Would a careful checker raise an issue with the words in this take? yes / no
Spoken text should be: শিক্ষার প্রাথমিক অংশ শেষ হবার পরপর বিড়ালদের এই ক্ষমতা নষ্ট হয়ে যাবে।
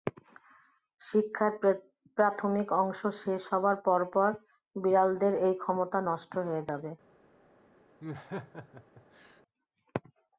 no